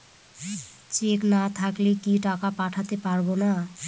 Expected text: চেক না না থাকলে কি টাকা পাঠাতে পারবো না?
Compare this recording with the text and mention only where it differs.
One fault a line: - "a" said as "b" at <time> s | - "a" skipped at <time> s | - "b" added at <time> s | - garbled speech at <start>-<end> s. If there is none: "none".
- "না" skipped at 1.4 s